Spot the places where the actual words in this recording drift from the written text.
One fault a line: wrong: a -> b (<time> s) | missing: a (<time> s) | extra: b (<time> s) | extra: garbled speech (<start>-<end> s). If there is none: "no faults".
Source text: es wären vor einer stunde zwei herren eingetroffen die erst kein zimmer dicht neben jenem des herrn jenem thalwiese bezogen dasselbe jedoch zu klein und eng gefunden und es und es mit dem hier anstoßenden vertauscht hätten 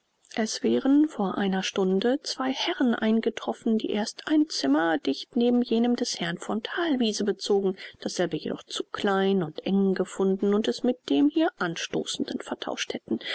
wrong: kein -> ein (4.3 s)
wrong: jenem -> von (6.4 s)
missing: und es (10.8 s)